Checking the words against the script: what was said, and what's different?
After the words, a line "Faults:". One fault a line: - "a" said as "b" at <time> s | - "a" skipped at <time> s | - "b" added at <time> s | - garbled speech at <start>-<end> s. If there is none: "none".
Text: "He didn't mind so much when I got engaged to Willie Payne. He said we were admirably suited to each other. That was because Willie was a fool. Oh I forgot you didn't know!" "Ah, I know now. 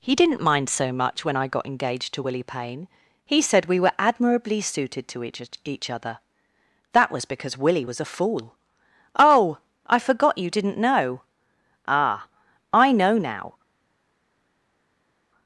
"He didn't mind so much when I got engaged to Willie Payne. He said we were admirably suited to each each other. That was because Willie was a fool. Oh I forgot you didn't know!" "Ah, I know now.
Faults:
- "each" added at 5.6 s